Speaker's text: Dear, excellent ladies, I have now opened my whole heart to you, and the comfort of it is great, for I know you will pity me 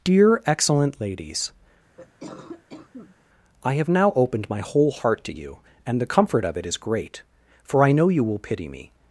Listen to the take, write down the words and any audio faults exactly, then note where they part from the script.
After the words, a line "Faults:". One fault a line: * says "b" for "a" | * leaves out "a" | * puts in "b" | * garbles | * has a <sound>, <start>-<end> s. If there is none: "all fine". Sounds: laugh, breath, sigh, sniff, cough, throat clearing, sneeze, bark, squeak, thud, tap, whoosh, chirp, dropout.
Dear, excellent ladies, I have now opened my whole heart to you, and the comfort of it is great, for I know you will pity me
Faults:
* has a cough, 2.0-3.2 s